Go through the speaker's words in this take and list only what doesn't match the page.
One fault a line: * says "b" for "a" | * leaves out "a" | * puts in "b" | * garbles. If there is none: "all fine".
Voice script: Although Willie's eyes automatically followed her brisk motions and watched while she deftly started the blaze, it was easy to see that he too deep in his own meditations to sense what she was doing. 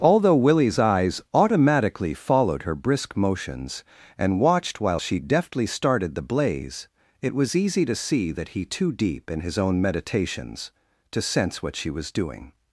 all fine